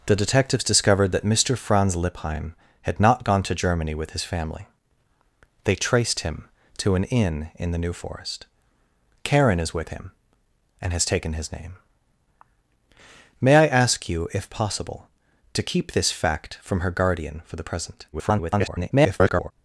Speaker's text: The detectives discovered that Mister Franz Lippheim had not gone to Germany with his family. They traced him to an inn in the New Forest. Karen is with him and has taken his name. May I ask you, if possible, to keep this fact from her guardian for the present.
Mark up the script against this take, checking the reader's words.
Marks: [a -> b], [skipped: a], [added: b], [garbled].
The detectives discovered that Mister Franz Lippheim had not gone to Germany with his family. They traced him to an inn in the New Forest. Karen is with him and has taken his name. May I ask you, if possible, to keep this fact from her guardian for the present. [garbled]